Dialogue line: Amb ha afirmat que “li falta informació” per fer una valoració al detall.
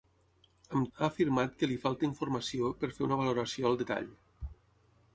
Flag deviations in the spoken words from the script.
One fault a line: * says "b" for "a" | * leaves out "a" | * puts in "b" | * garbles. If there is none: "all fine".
all fine